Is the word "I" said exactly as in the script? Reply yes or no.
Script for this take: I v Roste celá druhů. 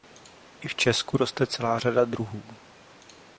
yes